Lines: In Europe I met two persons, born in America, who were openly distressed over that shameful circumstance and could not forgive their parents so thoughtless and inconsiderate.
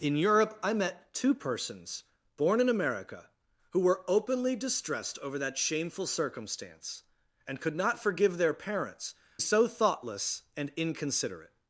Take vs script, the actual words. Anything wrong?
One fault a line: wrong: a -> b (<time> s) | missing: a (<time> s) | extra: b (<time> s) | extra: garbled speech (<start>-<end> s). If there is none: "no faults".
no faults